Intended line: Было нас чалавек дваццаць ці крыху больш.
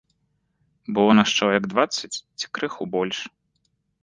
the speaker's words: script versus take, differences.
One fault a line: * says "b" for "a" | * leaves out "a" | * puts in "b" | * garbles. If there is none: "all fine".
all fine